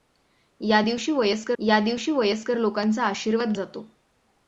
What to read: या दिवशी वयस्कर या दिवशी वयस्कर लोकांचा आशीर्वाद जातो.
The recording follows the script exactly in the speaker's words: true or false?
true